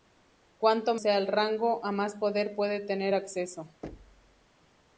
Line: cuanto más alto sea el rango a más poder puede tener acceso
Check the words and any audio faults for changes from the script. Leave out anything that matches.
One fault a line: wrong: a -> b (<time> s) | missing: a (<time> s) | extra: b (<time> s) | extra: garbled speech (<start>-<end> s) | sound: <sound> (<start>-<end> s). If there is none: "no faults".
missing: más alto (0.9 s)
sound: thud (3.8-4.5 s)